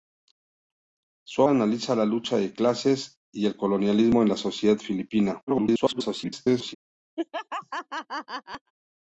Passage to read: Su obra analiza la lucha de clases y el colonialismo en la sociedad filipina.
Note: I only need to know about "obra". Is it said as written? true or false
false